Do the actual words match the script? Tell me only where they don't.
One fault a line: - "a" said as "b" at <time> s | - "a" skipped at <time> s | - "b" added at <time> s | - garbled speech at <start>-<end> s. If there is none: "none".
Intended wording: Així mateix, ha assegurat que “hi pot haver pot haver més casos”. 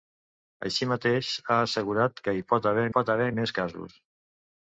none